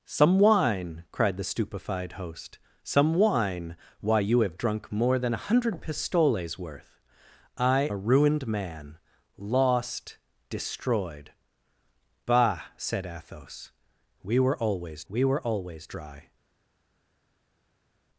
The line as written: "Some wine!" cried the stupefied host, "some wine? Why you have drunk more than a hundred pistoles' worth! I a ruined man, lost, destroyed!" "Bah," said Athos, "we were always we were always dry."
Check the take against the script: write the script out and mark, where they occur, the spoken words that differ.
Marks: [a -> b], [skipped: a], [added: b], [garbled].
"Some wine!" cried the stupefied host, "some wine? Why you have drunk more than a hundred pistoles' worth! I a ruined man, lost, destroyed!" "Bah," said Athos, "we were always we were always dry."